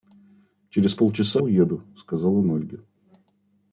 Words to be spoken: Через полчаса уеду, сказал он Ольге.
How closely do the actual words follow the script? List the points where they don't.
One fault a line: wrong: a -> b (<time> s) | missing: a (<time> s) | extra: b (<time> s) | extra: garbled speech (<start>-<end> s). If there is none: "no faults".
no faults